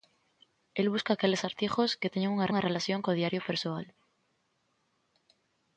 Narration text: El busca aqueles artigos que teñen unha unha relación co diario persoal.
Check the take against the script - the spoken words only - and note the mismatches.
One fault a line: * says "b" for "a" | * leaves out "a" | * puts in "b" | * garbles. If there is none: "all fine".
all fine